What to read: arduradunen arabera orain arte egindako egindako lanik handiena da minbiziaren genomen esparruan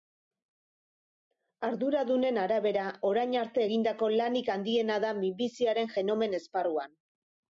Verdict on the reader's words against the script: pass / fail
fail